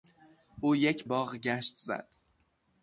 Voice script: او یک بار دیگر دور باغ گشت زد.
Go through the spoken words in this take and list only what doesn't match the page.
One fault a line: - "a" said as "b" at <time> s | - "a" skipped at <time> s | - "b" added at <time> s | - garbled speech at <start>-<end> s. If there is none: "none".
- "بار دیگر دور" skipped at 1.1 s